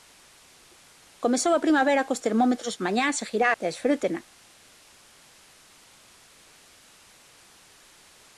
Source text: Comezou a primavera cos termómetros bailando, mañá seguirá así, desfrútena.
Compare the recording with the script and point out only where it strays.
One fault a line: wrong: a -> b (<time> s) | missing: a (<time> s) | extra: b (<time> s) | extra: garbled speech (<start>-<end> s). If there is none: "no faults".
missing: bailando (2.8 s)
missing: así (3.5 s)